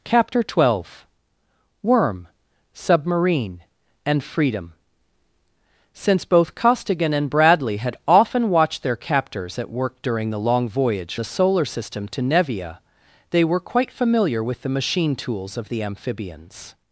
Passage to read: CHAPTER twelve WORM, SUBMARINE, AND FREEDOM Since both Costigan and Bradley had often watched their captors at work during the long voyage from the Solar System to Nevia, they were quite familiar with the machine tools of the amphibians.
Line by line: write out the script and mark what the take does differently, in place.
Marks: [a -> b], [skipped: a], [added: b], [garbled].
CHAPTER twelve WORM, SUBMARINE, AND FREEDOM Since both Costigan and Bradley had often watched their captors at work during the long voyage [skipped: from] the Solar System to Nevia, they were quite familiar with the machine tools of the amphibians.